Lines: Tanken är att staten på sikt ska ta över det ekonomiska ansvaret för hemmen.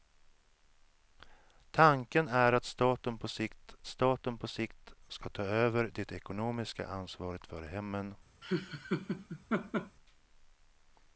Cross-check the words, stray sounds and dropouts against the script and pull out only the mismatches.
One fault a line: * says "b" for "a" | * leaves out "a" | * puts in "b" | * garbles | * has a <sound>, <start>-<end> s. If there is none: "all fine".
* puts in "staten på sikt"
* has a laugh, 8.4-10.0 s